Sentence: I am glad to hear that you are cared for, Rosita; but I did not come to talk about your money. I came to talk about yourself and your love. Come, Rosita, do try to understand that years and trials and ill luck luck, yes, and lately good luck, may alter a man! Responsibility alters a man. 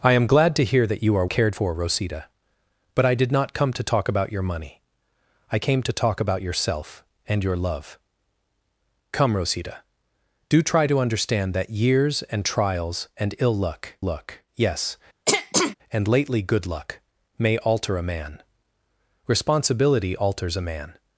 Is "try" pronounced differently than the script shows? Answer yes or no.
no